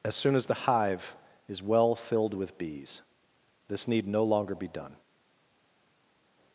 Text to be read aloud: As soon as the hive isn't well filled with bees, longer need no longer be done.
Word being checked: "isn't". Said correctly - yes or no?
no